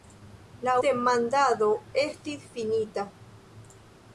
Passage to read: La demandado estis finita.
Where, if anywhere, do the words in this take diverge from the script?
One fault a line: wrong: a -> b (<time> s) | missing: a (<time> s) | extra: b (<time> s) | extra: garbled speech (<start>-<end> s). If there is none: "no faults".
no faults